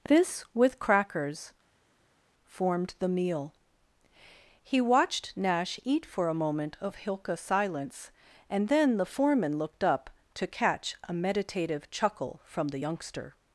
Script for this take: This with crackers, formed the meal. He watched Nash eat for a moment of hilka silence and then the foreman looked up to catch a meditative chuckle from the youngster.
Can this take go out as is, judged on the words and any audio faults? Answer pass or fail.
pass